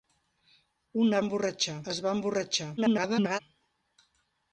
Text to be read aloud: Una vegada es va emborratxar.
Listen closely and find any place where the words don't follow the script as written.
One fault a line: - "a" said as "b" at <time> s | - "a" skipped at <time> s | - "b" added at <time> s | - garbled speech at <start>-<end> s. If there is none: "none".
- "vegada" said as "emborratxar" at 1.3 s
- garbled speech at 2.8-3.4 s